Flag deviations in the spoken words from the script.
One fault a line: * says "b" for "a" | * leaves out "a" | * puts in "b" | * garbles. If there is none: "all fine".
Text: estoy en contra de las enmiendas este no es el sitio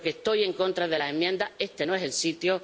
all fine